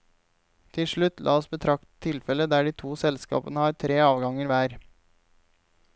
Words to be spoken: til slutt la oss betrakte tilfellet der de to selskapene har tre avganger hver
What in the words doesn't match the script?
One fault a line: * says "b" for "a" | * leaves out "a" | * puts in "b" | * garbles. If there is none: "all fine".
all fine